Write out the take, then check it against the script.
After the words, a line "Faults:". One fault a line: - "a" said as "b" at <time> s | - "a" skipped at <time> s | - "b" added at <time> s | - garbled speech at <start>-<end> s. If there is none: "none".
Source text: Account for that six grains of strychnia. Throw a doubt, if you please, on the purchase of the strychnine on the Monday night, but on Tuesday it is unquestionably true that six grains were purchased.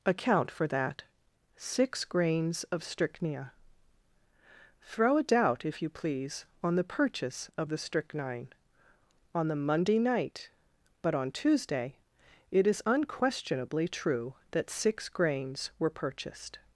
Account for that six grains of strychnia. Throw a doubt, if you please, on the purchase of the strychnine on the Monday night, but on Tuesday it is unquestionably true that six grains were purchased.
Faults:
none